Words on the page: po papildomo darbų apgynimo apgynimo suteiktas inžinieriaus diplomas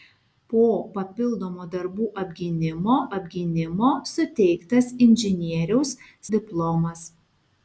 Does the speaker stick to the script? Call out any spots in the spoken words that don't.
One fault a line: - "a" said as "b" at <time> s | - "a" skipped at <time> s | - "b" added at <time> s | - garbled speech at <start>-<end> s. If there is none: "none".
none